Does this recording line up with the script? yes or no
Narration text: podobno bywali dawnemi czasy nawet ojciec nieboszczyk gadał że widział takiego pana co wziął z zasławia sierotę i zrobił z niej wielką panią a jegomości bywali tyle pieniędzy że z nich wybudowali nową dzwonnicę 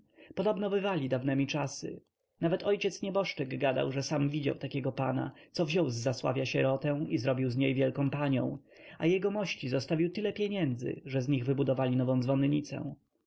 no